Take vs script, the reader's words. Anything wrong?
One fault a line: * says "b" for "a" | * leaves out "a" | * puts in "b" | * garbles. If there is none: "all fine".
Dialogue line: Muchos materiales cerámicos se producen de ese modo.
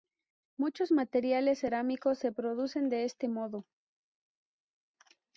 * says "este" for "ese"